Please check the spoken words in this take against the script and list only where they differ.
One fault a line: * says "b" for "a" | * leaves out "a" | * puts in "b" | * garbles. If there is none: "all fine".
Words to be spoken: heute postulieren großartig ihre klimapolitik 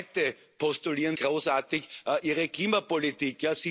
all fine